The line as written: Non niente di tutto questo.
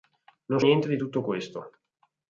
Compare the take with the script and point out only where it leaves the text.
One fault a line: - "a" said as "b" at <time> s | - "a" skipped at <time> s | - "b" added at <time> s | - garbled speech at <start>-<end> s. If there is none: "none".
none